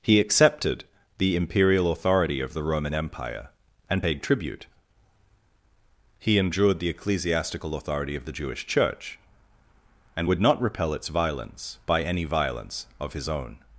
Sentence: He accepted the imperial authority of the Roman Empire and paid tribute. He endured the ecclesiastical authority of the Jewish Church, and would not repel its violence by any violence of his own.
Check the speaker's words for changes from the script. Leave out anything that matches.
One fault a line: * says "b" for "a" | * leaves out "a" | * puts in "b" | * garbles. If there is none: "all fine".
all fine